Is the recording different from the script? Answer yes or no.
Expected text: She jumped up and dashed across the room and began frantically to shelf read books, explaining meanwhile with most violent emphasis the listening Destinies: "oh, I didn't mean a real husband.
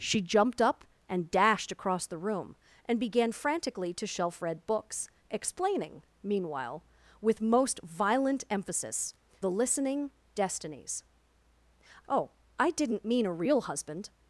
no